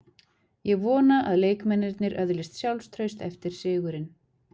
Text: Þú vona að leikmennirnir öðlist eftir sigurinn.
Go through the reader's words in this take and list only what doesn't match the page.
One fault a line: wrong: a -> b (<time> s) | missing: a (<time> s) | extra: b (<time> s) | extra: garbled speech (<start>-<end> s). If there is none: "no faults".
wrong: Þú -> Ég (0.7 s)
extra: sjálfstraust (2.6 s)